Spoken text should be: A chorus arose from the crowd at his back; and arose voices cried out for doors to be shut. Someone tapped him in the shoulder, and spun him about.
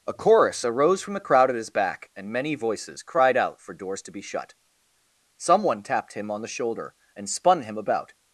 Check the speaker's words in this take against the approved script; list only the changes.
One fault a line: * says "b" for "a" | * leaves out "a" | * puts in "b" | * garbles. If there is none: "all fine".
* says "many" for "arose"
* says "on" for "in"